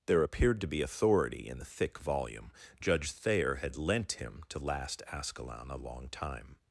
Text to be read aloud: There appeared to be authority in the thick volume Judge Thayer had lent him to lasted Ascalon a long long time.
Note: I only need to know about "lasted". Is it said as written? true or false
false